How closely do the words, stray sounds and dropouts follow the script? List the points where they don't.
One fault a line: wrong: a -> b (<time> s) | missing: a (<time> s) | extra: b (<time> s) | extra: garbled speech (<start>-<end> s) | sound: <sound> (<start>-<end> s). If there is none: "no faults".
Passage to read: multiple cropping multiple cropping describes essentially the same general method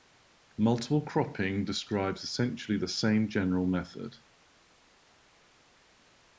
missing: multiple cropping (1.6 s)